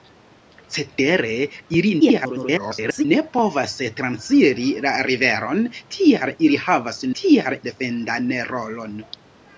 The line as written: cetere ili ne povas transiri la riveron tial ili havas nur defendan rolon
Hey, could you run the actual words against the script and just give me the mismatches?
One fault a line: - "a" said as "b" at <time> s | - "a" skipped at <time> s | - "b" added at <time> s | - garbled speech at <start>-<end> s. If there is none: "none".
- garbled speech at 2.0-3.0 s
- "nur" said as "tial" at 7.2 s